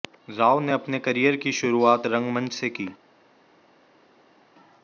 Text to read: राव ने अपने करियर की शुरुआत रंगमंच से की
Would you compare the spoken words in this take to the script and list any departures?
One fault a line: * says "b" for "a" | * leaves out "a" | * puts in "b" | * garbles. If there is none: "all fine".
all fine